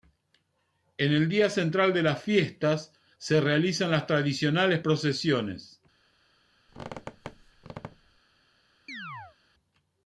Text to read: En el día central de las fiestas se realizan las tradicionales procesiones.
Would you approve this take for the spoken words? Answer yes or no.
yes